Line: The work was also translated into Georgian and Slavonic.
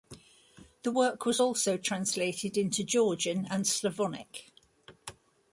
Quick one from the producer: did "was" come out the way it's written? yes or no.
yes